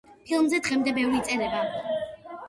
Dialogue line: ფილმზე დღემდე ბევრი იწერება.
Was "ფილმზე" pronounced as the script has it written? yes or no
yes